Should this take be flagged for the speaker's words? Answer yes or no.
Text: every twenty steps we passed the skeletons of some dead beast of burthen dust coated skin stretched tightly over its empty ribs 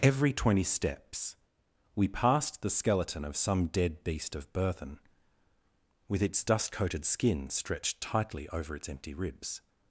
yes